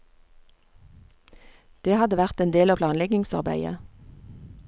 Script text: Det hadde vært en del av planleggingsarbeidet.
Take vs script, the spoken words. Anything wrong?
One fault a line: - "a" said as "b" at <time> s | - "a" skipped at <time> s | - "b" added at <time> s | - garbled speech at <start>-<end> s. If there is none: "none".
none